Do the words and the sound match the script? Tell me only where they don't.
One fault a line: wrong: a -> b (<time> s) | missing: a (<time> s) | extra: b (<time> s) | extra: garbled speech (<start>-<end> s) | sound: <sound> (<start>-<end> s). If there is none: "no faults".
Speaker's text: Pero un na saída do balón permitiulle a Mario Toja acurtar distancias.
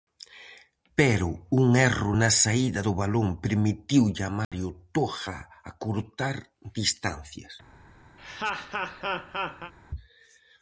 extra: erro (1.9 s)
sound: dropout (4.4-4.5 s)
sound: laugh (8.2-9.7 s)